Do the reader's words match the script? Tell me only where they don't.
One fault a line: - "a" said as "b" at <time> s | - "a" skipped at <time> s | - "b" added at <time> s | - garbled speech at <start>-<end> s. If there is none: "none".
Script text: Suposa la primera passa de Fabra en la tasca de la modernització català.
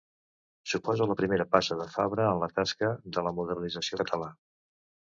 none